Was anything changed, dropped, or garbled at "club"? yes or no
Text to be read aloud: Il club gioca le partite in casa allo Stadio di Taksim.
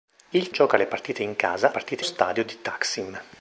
yes